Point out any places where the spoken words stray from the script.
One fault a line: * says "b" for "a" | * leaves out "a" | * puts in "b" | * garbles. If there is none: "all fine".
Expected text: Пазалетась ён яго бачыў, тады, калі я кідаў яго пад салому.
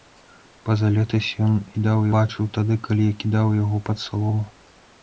* says "кідаў" for "яго"